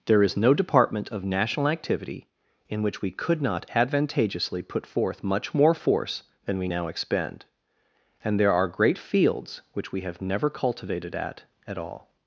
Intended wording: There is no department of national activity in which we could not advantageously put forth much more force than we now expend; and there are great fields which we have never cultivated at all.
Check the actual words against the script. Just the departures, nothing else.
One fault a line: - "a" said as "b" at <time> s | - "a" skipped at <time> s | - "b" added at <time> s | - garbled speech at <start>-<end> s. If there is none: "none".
- "at" added at 11.7 s